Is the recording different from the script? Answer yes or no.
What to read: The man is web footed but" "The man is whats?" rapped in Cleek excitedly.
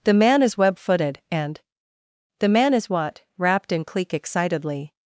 yes